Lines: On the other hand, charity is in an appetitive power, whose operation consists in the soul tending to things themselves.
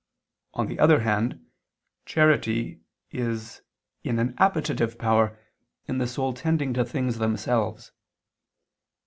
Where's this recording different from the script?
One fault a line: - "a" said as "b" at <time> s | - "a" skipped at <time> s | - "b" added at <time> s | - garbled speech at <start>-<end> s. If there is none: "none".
- "whose operation consists" skipped at 5.4 s